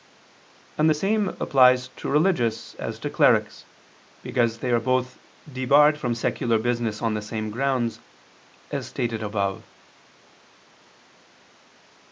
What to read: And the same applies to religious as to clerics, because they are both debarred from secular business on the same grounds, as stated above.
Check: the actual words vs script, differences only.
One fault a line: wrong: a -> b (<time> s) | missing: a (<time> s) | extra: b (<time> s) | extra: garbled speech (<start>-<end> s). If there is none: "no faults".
no faults